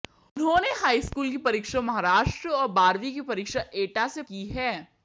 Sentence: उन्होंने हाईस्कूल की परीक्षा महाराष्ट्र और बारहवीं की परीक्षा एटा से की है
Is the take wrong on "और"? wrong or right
right